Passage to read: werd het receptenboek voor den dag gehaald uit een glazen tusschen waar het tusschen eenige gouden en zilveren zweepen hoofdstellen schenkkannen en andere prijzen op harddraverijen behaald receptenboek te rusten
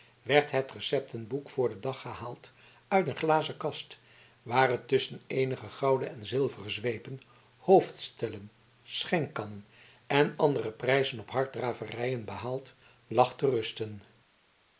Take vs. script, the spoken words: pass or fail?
fail